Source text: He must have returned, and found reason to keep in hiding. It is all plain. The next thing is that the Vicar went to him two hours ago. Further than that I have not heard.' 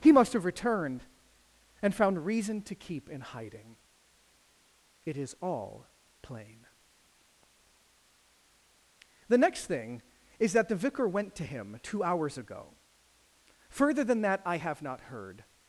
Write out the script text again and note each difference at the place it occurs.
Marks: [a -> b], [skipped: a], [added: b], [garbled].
He must have returned, and found reason to keep in hiding. It is all plain. The next thing is that the Vicar went to him two hours ago. Further than that I have not heard.'